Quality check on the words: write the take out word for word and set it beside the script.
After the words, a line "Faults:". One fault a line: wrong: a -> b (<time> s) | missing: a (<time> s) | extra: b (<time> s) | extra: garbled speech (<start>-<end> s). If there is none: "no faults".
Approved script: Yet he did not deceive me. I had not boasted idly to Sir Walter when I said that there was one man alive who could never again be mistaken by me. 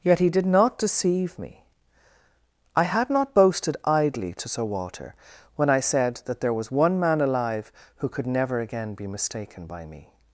Yet he did not deceive me. I had not boasted idly to Sir Walter when I said that there was one man alive who could never again be mistaken by me.
Faults:
no faults